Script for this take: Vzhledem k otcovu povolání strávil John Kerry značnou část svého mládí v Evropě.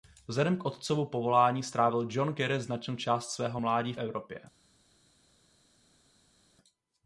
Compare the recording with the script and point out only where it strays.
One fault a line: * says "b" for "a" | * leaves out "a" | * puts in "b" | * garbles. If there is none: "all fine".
all fine